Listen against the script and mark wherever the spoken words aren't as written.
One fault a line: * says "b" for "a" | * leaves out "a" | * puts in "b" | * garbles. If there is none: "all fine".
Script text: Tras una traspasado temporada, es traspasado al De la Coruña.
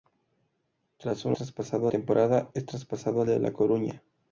all fine